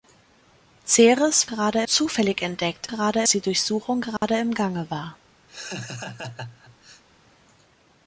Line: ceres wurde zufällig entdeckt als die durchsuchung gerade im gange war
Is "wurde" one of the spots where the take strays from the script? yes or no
yes